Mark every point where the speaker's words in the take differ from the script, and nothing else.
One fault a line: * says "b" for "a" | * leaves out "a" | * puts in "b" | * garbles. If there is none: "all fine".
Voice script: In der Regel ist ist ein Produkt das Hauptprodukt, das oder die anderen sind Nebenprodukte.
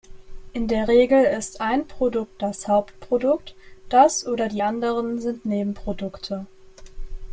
* leaves out "ist"